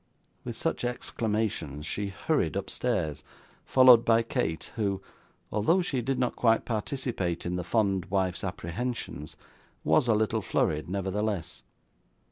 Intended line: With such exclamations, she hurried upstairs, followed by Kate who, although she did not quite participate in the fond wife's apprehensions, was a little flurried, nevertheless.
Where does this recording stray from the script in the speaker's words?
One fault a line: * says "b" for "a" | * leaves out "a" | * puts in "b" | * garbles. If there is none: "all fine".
all fine